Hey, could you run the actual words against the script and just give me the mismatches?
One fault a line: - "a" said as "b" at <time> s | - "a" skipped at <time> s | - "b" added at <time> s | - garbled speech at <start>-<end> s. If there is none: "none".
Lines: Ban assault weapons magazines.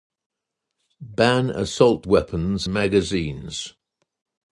none